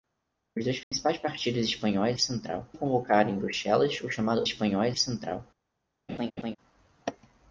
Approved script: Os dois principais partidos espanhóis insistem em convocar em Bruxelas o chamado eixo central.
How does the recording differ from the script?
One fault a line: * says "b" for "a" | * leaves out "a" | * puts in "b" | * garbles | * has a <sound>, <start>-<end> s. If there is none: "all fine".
* has a dropout, 0.8-0.9 s
* says "central" for "insistem"
* says "espanhóis" for "eixo"
* has a laugh, 6.1-6.6 s